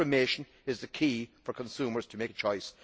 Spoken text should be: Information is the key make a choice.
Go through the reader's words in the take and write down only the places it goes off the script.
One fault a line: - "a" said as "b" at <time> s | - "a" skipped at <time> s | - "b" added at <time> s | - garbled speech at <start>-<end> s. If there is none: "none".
- "for consumers to" added at 1.4 s